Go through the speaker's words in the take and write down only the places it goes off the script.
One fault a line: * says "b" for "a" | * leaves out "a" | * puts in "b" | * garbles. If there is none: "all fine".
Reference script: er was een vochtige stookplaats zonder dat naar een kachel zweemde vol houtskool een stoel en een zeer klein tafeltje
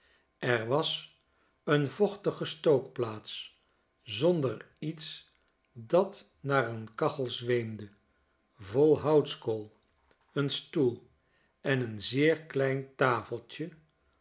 * puts in "iets"